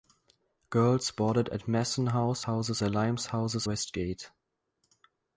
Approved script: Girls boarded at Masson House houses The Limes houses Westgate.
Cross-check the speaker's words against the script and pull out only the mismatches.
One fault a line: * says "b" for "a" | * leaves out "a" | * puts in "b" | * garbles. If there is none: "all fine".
all fine